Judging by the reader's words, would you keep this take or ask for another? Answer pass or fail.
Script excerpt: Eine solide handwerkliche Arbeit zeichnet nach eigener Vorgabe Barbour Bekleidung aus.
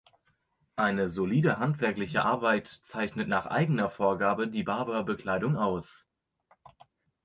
fail